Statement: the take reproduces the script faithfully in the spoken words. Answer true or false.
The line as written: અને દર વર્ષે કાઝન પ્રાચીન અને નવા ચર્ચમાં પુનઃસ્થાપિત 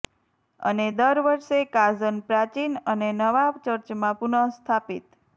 true